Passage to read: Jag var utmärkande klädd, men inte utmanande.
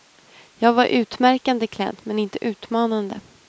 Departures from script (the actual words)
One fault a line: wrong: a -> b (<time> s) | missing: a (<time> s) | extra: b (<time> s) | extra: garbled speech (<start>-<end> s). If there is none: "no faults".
no faults